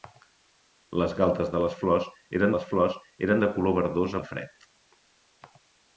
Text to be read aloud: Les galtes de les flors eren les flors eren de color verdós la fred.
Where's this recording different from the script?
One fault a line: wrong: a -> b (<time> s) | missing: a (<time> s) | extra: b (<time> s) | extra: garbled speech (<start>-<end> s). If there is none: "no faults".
no faults